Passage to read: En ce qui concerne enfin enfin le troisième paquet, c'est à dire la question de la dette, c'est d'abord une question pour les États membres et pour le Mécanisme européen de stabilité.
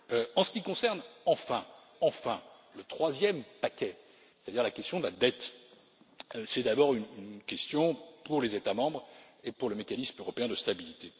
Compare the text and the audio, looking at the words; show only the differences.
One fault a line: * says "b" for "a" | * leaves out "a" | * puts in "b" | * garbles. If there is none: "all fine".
all fine